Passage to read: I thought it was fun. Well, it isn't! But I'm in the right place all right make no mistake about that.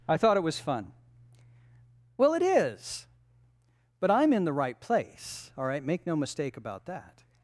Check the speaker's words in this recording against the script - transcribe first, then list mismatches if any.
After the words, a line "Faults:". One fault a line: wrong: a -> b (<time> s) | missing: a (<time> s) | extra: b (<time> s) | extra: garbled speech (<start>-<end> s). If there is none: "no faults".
I thought it was fun. Well, it is! But I'm in the right place all right make no mistake about that.
Faults:
wrong: isn't -> is (2.4 s)